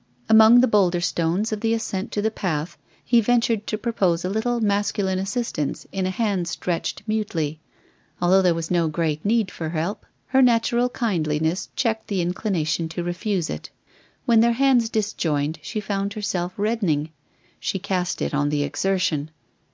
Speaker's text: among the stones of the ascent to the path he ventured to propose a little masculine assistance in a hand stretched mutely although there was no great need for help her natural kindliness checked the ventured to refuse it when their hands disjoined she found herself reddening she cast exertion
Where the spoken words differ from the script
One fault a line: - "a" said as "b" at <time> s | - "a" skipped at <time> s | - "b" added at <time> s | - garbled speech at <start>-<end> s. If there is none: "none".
- "boulder" added at 0.7 s
- "ventured" said as "inclination" at 12.2 s
- "it on the" added at 18.2 s